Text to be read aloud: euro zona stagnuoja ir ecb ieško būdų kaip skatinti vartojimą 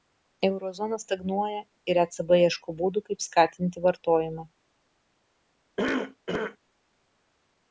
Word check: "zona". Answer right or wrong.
right